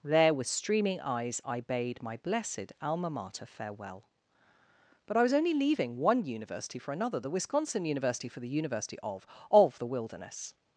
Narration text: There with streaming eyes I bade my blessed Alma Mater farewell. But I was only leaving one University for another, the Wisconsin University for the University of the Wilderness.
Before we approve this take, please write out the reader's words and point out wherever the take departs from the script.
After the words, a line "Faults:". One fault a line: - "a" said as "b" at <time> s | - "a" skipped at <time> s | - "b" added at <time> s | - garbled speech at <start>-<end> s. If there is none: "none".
There with streaming eyes I bade my blessed Alma Mater farewell. But I was only leaving one University for another, the Wisconsin University for the University of of the Wilderness.
Faults:
- "of" added at 9.5 s